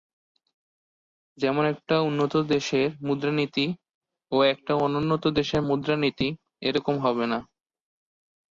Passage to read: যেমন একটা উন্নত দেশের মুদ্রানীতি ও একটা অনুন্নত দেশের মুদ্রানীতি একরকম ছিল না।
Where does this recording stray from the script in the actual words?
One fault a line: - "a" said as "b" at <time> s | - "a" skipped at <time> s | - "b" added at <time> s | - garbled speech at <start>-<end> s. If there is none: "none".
- "ছিল" said as "হবে" at 7.0 s